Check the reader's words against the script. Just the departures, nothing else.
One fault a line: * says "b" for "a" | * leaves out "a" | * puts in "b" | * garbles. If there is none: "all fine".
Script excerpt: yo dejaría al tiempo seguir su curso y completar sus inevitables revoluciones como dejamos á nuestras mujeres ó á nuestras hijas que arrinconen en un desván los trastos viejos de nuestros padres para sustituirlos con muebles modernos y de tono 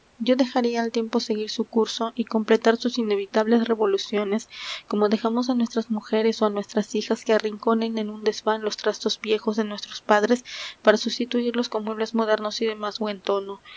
* puts in "más buen"